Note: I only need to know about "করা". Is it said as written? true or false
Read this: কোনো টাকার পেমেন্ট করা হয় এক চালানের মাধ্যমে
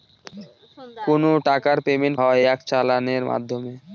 false